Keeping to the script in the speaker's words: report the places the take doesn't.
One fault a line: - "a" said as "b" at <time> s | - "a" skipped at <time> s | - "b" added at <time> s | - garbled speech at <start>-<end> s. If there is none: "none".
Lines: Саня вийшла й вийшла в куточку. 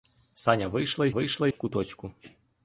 none